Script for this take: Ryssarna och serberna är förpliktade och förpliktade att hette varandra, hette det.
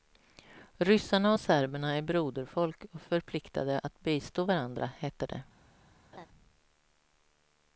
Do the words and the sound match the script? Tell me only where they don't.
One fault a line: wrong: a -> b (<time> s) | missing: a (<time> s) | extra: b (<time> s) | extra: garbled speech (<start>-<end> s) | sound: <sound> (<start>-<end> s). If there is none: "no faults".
wrong: förpliktade -> broderfolk (2.0 s)
wrong: hette -> bistå (4.0 s)
sound: laugh (6.1-6.3 s)